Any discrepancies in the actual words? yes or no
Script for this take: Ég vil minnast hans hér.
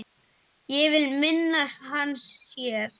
no